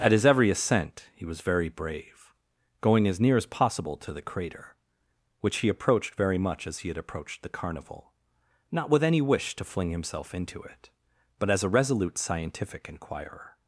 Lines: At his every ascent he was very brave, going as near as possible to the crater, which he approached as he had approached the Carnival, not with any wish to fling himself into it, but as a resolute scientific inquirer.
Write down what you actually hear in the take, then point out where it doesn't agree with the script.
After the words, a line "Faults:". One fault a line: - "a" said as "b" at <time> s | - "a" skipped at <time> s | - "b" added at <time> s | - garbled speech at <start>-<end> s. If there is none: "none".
At his every ascent he was very brave, going as near as possible to the crater, which he approached very much as he had approached the Carnival, not with any wish to fling himself into it, but as a resolute scientific inquirer.
Faults:
- "very much" added at 6.1 s